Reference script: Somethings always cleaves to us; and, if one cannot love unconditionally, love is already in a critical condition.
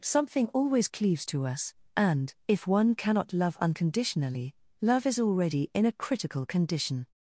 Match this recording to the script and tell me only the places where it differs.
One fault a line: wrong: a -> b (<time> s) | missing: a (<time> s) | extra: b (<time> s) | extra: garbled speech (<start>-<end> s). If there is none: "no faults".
wrong: Somethings -> Something (0.0 s)